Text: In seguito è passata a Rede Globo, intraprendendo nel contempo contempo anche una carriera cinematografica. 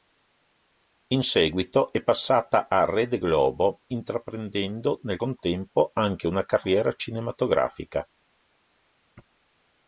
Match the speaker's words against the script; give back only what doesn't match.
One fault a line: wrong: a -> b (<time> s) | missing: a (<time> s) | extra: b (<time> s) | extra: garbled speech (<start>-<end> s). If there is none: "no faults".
missing: contempo (5.9 s)